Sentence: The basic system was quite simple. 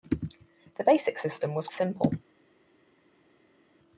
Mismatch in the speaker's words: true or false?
true